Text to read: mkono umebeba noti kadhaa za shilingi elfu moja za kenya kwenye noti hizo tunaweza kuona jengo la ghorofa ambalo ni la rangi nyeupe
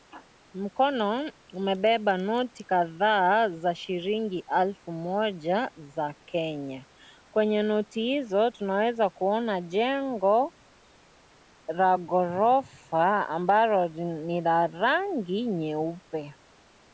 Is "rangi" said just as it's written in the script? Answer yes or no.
yes